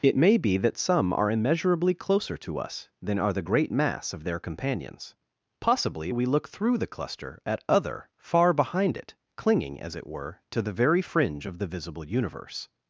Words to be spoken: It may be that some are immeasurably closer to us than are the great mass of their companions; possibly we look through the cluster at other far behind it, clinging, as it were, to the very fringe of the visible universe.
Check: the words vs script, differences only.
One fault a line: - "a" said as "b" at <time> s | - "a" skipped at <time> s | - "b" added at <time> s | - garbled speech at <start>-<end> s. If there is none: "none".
none